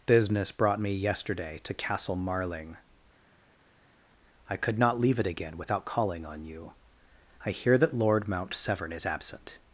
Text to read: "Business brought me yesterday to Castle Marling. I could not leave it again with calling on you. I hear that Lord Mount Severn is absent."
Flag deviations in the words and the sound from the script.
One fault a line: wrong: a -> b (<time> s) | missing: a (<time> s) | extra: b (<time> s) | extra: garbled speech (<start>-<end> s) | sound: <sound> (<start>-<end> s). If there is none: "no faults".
wrong: with -> without (5.6 s)